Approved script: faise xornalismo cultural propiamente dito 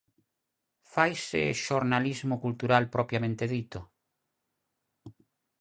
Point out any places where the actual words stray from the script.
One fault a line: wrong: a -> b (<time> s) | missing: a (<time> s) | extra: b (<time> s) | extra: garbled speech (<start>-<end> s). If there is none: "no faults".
no faults